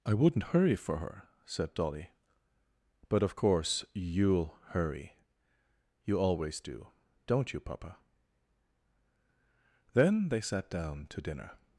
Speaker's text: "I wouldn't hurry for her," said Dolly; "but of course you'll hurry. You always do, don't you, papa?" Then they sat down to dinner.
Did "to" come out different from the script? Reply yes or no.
no